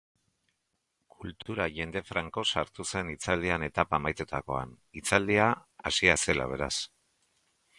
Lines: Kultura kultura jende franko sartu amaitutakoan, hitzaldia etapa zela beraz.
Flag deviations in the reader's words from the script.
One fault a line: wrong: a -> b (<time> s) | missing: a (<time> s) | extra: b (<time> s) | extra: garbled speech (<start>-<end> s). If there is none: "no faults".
missing: kultura (1.7 s)
extra: zen hitzaldian etapa (2.9 s)
wrong: etapa -> hasia (5.9 s)